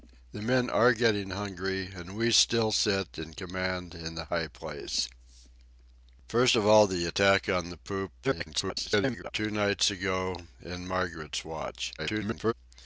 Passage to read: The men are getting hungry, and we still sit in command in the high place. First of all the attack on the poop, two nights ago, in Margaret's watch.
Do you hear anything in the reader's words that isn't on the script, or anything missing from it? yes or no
yes